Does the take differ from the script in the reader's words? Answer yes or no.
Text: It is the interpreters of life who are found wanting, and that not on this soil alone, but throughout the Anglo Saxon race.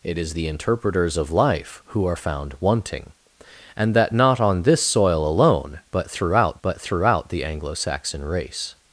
yes